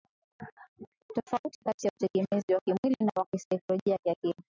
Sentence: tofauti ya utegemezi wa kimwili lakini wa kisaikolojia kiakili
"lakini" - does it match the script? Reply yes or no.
no